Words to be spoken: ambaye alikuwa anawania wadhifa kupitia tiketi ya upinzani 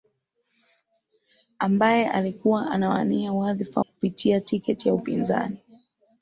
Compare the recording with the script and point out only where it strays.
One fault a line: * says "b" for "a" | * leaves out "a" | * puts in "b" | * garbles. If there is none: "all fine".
all fine